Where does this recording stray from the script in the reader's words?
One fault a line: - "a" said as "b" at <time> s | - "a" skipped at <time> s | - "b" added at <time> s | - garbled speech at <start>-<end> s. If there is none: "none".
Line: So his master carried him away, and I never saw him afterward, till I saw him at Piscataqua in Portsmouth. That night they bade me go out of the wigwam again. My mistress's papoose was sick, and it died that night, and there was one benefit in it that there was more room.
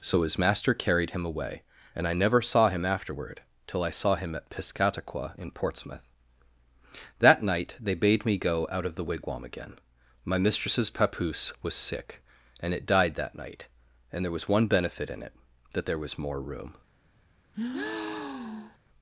none